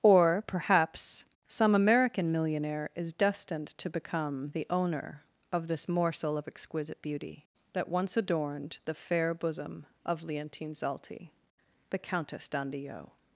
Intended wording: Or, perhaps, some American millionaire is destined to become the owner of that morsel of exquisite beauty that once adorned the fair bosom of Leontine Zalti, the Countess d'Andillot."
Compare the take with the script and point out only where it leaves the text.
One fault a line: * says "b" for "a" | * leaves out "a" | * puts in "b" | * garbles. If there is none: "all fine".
* says "this" for "that"